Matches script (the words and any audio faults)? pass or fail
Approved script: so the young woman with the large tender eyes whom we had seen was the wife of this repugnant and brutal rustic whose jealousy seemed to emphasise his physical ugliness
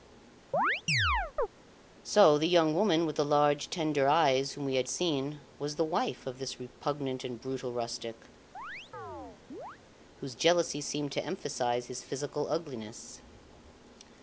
fail